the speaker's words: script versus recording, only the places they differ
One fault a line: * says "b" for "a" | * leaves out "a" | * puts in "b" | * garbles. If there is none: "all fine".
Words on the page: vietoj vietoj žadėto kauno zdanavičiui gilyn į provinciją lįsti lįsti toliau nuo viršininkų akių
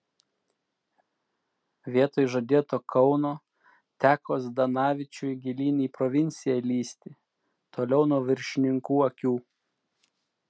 * leaves out "vietoj"
* puts in "teko"
* leaves out "lįsti"